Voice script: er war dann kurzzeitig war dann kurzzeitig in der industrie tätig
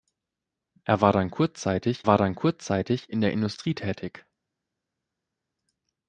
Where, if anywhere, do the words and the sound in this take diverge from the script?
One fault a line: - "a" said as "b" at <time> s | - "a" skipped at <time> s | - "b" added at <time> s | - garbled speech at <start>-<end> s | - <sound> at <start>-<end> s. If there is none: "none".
none